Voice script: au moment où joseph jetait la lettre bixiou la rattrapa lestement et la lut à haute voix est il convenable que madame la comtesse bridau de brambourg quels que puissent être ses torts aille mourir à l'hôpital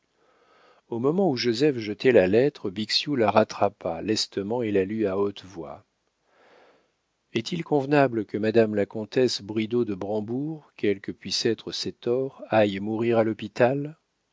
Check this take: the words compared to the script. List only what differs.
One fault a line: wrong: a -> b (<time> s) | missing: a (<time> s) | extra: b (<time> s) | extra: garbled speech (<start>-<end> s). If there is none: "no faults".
no faults